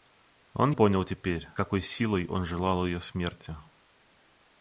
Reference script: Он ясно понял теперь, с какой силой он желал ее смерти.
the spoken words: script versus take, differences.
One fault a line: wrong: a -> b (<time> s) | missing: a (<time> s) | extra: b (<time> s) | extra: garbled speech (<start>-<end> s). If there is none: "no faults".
missing: ясно (0.7 s)
missing: с (1.5 s)